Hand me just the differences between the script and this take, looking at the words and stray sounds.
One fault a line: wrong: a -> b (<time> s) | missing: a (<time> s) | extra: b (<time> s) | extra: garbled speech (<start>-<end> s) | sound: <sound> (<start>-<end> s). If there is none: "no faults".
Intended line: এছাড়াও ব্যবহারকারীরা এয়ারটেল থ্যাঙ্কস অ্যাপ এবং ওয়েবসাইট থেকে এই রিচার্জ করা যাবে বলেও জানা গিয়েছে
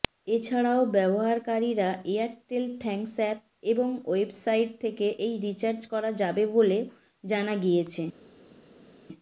no faults